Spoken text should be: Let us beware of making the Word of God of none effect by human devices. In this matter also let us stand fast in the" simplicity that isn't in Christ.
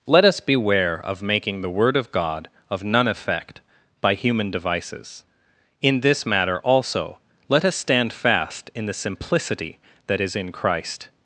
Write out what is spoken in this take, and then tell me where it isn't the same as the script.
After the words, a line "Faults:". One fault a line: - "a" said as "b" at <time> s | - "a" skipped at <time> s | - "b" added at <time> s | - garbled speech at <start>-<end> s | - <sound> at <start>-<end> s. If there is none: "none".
Let us beware of making the Word of God of none effect by human devices. In this matter also let us stand fast in the" simplicity that is in Christ.
Faults:
- "isn't" said as "is" at 10.2 s